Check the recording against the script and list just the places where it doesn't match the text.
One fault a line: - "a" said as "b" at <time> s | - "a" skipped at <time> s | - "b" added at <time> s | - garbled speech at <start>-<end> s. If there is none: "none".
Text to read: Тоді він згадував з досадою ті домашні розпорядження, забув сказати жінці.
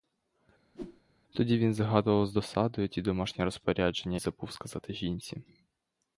none